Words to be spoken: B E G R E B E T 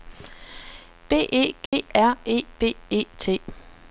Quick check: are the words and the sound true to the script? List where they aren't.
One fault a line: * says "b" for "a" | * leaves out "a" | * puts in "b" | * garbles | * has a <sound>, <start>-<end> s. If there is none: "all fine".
* has a dropout, 1.7-1.7 s